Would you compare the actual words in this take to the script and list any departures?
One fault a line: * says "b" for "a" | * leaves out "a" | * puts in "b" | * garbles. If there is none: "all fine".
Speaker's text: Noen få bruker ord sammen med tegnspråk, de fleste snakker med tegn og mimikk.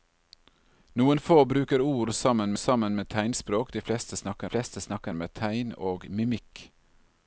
* puts in "sammen"
* puts in "fleste snakker"